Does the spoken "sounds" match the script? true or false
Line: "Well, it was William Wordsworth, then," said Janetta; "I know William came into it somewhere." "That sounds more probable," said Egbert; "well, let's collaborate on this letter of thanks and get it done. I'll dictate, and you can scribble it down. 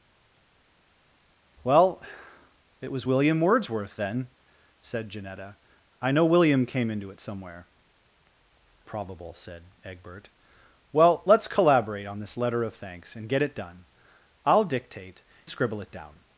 false